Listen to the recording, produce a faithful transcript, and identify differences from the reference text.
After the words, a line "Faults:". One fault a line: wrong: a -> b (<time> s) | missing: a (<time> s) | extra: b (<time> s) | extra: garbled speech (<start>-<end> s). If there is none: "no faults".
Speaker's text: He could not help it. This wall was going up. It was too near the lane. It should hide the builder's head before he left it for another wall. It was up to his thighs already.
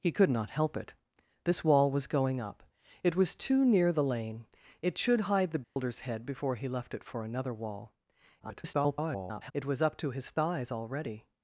He could not help it. This wall was going up. It was too near the lane. It should hide the builder's head before he left it for another wall. [garbled] It was up to his thighs already.
Faults:
extra: garbled speech (8.4-9.5 s)